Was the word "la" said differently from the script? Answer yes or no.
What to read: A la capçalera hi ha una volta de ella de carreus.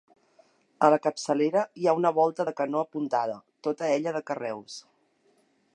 no